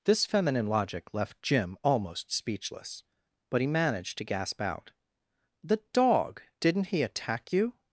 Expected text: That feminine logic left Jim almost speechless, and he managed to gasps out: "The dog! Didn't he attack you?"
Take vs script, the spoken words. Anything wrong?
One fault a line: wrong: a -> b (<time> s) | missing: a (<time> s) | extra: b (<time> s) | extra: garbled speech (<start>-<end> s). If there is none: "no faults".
wrong: That -> This (0.1 s)
wrong: and -> but (3.5 s)
wrong: gasps -> gasp (4.2 s)